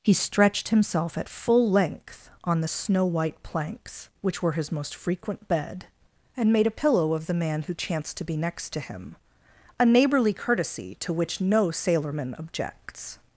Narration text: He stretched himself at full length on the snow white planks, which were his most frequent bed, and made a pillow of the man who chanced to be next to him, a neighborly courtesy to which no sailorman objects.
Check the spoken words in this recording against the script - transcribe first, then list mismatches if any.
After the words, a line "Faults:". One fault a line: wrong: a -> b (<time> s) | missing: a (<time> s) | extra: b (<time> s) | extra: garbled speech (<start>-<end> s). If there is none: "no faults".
He stretched himself at full length on the snow white planks, which were his most frequent bed, and made a pillow of the man who chanced to be next to him, a neighborly courtesy to which no sailorman objects.
Faults:
no faults